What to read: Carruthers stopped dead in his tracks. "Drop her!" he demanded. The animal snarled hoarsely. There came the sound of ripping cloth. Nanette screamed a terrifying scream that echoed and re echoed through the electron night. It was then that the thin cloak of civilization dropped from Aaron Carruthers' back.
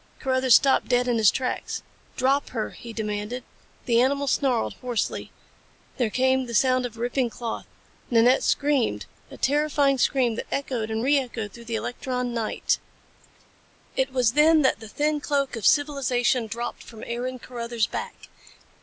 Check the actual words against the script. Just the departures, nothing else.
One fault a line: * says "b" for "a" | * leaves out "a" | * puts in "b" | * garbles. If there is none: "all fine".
all fine